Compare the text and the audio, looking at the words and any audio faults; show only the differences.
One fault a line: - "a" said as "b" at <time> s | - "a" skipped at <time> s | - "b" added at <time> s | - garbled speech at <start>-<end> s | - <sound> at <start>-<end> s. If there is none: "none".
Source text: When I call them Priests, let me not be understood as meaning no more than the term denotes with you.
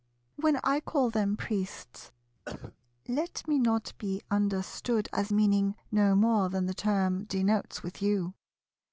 - cough at 2.5-2.8 s